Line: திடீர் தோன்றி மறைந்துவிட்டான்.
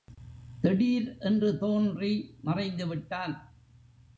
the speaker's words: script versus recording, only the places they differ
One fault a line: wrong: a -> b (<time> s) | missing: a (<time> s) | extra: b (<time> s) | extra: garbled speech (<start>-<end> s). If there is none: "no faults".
extra: என்று (1.2 s)